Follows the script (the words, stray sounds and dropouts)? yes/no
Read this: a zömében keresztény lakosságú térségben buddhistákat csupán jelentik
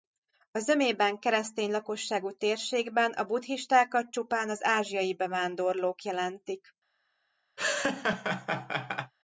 no